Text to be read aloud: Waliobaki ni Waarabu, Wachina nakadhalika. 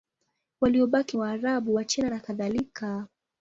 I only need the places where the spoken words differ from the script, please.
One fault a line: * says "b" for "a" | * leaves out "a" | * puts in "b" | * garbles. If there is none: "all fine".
* leaves out "ni"